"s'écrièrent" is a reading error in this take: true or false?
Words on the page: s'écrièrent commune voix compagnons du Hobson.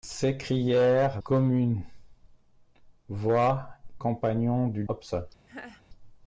false